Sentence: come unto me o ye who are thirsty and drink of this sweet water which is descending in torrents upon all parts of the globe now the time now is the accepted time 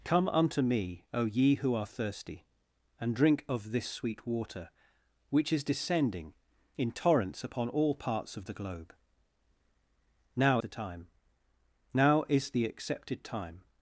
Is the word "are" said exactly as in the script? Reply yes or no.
yes